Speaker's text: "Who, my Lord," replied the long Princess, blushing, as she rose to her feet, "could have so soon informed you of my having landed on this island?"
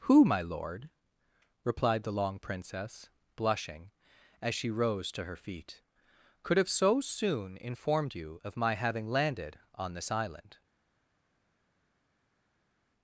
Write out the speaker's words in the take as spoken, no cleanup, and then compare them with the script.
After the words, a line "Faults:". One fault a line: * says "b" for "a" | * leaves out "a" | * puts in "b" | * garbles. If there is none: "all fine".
"Who, my Lord," replied the long Princess, blushing, as she rose to her feet, "could have so soon informed you of my having landed on this island?"
Faults:
all fine